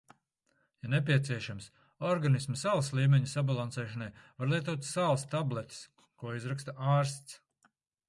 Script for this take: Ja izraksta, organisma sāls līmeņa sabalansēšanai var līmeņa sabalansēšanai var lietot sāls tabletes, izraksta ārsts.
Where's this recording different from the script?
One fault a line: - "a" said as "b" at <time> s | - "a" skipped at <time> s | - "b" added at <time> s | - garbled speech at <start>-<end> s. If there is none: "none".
- "izraksta" said as "nepieciešams" at 0.9 s
- "līmeņa sabalansēšanai var" skipped at 4.5 s
- "ko" added at 6.2 s